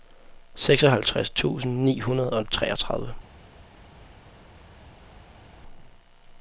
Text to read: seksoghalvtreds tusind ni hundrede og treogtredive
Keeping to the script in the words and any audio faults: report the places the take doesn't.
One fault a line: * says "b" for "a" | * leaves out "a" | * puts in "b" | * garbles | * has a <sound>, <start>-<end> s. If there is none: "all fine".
all fine